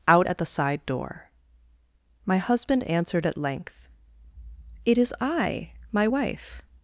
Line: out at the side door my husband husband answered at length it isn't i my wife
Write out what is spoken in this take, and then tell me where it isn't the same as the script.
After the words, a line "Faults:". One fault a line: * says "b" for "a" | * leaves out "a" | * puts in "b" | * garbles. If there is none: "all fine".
out at the side door my husband answered at length it is i my wife
Faults:
* leaves out "husband"
* says "is" for "isn't"